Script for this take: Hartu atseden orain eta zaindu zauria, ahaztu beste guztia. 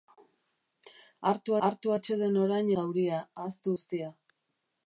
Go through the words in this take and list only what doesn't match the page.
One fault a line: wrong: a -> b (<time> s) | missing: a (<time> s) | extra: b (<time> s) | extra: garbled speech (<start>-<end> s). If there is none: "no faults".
extra: hartu (1.7 s)
missing: eta zaindu (2.7 s)
missing: beste (3.8 s)